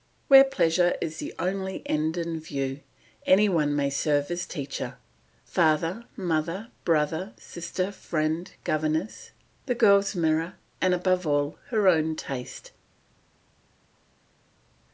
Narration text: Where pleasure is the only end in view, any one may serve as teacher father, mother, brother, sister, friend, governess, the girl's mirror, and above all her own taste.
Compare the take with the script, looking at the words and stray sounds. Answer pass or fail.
pass